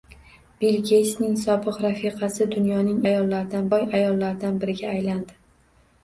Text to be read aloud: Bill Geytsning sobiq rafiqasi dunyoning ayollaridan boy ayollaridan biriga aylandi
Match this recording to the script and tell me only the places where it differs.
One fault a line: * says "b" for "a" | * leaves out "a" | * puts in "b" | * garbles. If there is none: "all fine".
all fine